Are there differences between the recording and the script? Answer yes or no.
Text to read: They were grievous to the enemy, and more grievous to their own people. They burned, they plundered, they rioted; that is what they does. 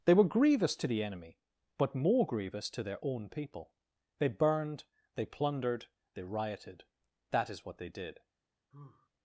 yes